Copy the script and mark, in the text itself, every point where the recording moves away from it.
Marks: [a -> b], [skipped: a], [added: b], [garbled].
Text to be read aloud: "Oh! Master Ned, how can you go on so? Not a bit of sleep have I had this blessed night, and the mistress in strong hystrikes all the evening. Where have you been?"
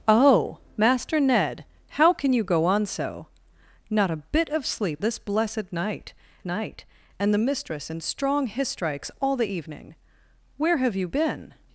"Oh! Master Ned, how can you go on so? Not a bit of sleep [skipped: have I had] this blessed night, [added: night] and the mistress in strong hystrikes all the evening. Where have you been?"